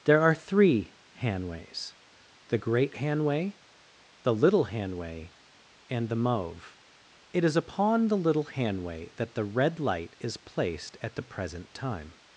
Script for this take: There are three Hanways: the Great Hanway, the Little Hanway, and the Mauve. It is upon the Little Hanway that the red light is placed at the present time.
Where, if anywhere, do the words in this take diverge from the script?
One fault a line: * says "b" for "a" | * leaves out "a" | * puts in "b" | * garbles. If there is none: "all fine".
all fine